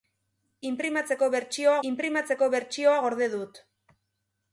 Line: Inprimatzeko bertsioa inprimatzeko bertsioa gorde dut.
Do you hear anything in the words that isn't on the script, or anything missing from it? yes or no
no